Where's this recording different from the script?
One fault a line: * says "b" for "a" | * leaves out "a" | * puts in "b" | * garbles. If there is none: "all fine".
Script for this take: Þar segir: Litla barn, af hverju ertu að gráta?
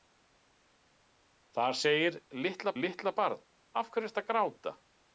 * puts in "Litla"